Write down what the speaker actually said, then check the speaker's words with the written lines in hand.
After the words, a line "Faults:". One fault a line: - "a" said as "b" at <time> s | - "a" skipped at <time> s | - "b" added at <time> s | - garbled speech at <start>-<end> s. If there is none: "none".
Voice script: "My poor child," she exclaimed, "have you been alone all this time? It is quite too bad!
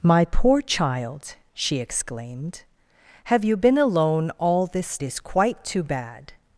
"My poor child," she exclaimed, "have you been alone all this is quite too bad!
Faults:
- "time It" skipped at 5.0 s